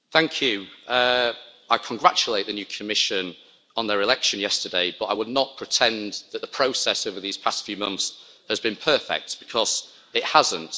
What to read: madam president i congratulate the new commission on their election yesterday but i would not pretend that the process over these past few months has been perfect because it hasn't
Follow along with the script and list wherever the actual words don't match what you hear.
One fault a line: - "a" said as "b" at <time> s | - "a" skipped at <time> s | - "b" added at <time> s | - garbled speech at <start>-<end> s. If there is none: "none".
none